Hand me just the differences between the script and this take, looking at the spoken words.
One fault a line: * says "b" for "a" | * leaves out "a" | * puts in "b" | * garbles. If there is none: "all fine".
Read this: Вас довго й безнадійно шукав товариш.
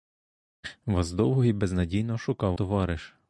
all fine